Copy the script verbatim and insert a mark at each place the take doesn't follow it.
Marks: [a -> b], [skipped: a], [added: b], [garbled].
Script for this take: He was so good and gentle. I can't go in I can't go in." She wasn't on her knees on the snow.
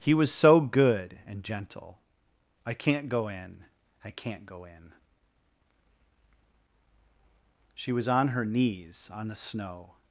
He was so good and gentle. I can't go in I can't go in." She [wasn't -> was] on her knees on the snow.